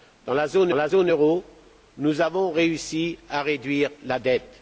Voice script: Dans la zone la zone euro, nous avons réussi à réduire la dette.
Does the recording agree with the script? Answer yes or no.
yes